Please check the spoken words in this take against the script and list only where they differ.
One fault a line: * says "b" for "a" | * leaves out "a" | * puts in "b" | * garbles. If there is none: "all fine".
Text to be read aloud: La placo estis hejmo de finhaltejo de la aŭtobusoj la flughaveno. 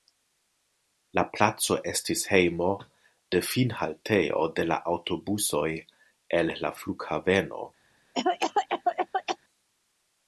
* puts in "el"